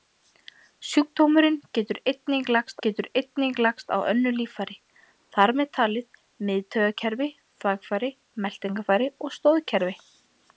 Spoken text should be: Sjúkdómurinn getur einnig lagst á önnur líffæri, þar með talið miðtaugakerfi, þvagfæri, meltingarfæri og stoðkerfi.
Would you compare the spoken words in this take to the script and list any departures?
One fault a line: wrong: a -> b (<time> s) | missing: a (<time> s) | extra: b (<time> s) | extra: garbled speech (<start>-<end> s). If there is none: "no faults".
extra: getur einnig lagst (2.9 s)